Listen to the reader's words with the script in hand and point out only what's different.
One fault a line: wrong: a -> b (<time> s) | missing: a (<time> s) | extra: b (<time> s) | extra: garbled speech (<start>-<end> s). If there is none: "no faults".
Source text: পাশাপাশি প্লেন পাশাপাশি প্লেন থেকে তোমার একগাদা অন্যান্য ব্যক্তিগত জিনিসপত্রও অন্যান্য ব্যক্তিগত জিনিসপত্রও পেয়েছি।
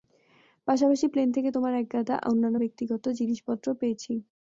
missing: পাশাপাশি প্লেন (1.3 s)
missing: অন্যান্য ব্যক্তিগত জিনিসপত্রও (3.8 s)